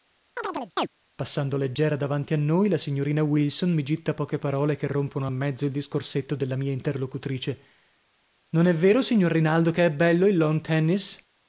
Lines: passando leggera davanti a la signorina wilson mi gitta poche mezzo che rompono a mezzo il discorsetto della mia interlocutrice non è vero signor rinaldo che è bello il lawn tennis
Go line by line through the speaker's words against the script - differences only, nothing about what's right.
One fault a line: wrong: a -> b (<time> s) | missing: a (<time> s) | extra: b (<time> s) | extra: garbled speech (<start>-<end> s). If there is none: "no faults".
extra: noi (2.4 s)
wrong: mezzo -> parole (4.4 s)